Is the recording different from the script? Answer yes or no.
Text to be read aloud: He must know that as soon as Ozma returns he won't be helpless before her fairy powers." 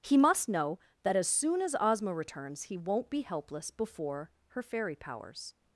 no